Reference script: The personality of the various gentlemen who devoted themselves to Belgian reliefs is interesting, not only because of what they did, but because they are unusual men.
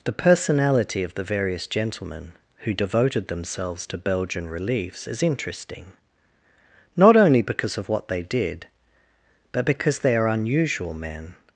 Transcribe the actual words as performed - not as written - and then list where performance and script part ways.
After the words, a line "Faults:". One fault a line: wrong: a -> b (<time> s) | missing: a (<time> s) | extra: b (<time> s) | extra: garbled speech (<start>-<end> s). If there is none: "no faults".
The personality of the various gentlemen who devoted themselves to Belgian reliefs is interesting, not only because of what they did, but because they are unusual men.
Faults:
no faults